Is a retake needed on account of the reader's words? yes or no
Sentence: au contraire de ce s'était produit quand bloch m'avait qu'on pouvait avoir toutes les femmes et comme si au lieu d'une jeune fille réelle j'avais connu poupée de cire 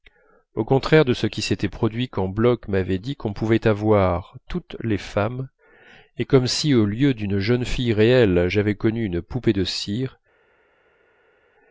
yes